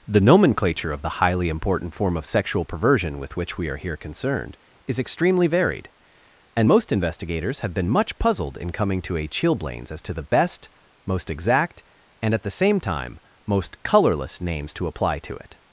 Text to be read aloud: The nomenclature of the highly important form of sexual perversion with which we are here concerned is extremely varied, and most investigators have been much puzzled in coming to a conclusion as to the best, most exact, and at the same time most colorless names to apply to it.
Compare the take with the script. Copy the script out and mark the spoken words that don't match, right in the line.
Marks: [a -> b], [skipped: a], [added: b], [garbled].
The nomenclature of the highly important form of sexual perversion with which we are here concerned is extremely varied, and most investigators have been much puzzled in coming to a [conclusion -> chilblains] as to the best, most exact, and at the same time most colorless names to apply to it.